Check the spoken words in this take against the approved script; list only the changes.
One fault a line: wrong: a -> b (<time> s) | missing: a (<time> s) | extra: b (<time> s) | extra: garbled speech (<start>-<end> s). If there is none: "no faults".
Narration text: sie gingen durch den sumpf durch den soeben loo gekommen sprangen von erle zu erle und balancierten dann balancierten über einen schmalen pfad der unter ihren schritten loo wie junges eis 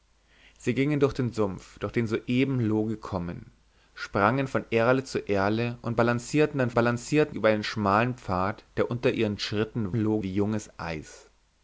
no faults